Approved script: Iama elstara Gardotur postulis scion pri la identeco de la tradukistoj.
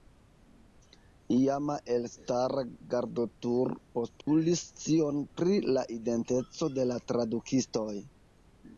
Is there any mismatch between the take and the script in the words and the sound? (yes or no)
yes